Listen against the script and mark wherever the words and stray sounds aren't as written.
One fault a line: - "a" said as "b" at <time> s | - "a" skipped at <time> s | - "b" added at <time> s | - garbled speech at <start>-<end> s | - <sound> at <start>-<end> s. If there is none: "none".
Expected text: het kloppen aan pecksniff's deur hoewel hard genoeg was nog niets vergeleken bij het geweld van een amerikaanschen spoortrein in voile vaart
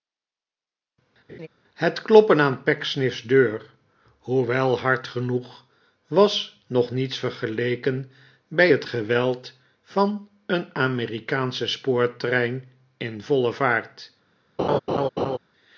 - laugh at 1.3-1.5 s
- laugh at 14.6-15.4 s